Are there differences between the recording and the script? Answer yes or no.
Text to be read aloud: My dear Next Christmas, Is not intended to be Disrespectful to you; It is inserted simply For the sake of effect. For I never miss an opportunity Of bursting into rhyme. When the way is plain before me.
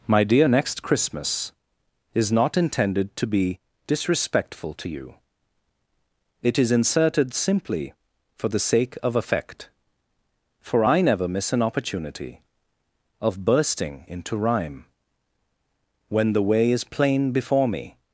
no